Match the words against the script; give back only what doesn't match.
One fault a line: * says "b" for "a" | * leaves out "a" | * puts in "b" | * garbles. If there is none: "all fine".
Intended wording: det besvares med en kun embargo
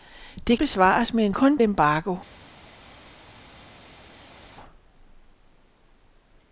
all fine